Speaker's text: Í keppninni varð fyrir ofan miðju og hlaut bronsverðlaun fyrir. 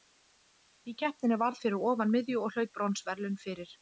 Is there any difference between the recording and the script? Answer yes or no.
no